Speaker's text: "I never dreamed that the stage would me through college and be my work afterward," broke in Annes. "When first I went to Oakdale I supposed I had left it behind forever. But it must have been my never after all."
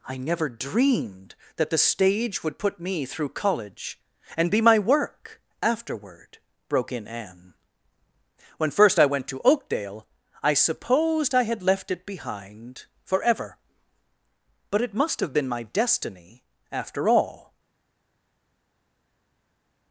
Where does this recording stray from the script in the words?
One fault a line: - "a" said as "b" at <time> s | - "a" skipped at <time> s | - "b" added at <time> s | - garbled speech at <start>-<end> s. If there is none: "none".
- "put" added at 2.6 s
- "Annes" said as "Anne" at 7.1 s
- "never" said as "destiny" at 15.6 s